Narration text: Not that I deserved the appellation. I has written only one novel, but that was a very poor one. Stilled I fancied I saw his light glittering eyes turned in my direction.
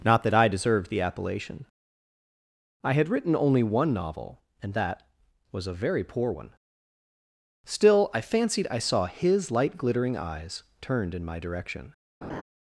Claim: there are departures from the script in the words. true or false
true